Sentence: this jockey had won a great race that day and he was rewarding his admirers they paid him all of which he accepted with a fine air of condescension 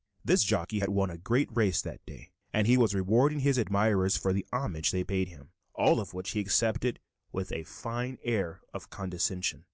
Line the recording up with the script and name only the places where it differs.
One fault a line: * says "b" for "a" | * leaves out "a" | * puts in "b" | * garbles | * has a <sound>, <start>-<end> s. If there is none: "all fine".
* puts in "for the homage"